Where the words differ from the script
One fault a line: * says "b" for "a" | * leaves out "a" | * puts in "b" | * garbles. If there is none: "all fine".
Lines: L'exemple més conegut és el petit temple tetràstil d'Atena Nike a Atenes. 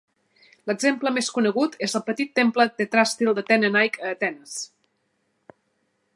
all fine